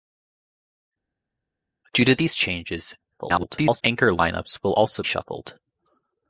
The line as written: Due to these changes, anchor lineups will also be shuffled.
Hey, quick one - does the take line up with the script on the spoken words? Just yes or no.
no